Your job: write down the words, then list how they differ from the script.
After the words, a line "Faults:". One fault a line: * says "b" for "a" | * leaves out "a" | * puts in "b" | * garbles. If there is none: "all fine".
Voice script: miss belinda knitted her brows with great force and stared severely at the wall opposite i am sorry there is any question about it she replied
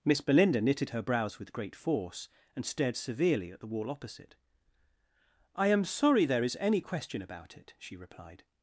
miss belinda knitted her brows with great force and stared severely at the wall opposite i am sorry there is any question about it she replied
Faults:
all fine